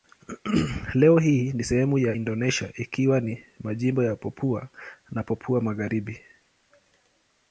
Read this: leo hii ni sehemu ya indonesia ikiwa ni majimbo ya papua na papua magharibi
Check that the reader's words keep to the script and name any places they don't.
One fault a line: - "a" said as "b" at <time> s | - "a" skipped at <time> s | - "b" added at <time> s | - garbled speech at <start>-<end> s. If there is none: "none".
none